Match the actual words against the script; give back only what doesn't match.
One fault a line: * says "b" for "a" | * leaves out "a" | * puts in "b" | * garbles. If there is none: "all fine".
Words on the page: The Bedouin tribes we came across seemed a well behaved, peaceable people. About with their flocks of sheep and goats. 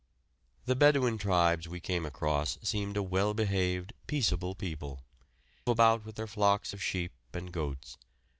all fine